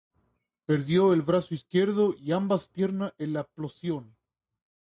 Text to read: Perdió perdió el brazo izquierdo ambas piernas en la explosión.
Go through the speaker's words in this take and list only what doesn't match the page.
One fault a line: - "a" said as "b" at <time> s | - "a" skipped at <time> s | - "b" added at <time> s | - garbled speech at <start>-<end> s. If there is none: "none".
- "perdió" skipped at 1.1 s
- "y" added at 2.1 s